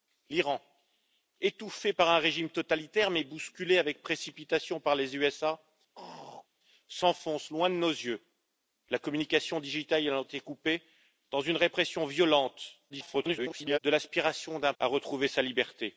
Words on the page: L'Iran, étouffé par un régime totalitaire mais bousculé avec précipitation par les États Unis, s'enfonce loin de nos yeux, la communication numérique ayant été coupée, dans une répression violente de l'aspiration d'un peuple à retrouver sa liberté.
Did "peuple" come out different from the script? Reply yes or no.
yes